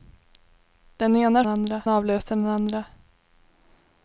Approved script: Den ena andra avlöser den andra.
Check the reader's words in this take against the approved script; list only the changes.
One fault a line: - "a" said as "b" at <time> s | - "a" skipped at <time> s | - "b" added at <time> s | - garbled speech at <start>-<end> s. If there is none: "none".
none